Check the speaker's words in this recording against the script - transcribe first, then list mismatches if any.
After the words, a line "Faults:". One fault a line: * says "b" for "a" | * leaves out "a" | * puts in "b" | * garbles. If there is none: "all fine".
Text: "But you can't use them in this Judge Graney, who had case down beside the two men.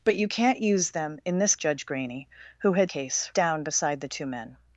"But you can't use them in this Judge Graney, who had case down beside the two men.
Faults:
all fine